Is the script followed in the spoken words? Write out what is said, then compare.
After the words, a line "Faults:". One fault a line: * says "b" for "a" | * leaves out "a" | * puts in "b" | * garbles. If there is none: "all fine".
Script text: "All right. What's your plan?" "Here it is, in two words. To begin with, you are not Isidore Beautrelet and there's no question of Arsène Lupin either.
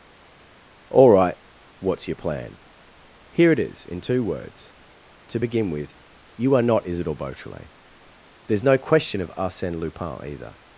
"All right. What's your plan?" "Here it is, in two words. To begin with, you are not Isidore Beautrelet there's no question of Arsène Lupin either.
Faults:
* leaves out "and"